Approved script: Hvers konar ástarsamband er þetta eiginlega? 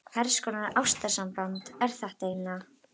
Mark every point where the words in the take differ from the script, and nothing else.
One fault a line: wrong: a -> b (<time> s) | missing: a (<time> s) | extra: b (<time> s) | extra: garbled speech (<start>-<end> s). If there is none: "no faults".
no faults